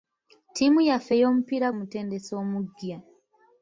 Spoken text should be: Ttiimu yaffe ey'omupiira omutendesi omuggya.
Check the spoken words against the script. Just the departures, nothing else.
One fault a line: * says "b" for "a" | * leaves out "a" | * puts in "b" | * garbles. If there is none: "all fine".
all fine